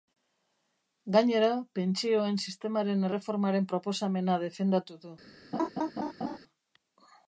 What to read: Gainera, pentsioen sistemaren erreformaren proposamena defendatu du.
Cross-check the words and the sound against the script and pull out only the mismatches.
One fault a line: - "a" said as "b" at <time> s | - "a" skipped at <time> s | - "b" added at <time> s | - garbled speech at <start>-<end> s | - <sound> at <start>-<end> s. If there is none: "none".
- laugh at 5.5-6.4 s